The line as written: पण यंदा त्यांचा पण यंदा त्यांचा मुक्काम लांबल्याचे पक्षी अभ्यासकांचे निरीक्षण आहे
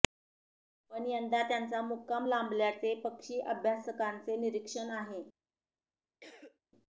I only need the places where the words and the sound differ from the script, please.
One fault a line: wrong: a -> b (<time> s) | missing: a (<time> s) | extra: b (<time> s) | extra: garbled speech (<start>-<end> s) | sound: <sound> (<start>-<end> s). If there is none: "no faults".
missing: पण यंदा त्यांचा (1.8 s)
sound: cough (6.2-6.6 s)